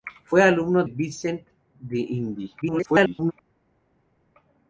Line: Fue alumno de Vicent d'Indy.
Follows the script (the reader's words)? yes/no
no